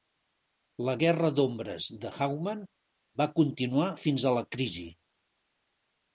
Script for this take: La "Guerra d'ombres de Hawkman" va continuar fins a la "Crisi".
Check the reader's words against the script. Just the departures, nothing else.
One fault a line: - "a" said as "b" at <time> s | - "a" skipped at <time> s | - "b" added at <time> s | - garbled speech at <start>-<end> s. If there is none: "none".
none